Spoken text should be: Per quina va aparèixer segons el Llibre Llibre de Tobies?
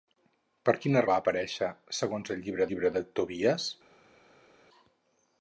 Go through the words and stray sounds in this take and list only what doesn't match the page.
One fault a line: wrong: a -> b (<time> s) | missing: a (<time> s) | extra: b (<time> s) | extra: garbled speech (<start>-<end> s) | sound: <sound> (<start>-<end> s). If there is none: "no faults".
no faults